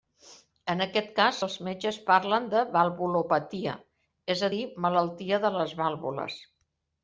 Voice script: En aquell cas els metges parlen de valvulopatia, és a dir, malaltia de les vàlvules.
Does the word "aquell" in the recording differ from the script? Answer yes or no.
yes